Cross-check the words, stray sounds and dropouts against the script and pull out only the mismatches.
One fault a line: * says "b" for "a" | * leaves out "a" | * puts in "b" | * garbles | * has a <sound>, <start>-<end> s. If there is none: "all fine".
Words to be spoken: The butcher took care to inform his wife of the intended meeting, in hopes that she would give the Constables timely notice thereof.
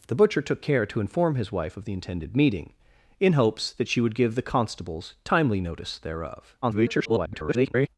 * garbles